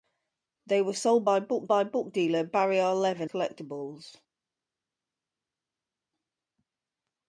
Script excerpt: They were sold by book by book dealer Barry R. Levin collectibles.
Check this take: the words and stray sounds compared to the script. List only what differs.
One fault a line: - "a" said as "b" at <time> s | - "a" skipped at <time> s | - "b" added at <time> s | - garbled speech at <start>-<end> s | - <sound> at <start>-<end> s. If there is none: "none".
none